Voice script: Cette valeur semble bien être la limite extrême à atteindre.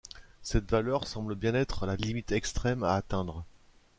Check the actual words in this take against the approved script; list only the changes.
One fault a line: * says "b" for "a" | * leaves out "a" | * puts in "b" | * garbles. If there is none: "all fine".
all fine